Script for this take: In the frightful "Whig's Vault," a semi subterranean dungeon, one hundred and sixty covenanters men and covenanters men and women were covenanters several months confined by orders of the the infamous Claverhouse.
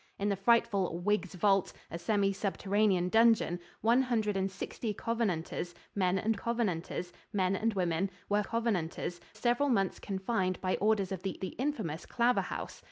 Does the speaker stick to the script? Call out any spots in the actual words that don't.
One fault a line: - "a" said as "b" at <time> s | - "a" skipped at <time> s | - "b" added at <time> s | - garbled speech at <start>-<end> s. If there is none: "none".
none